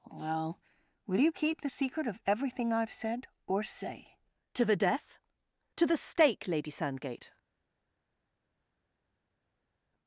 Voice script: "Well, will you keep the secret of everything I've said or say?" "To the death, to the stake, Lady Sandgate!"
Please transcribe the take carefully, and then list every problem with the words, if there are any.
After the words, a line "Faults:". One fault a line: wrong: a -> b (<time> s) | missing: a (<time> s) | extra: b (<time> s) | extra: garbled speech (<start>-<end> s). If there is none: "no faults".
"Well, will you keep the secret of everything I've said or say?" "To the death, to the stake, Lady Sandgate!"
Faults:
no faults